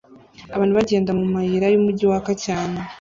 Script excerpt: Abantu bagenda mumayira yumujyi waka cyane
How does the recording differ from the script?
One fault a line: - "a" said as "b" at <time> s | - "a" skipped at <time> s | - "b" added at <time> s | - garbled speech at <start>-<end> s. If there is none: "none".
none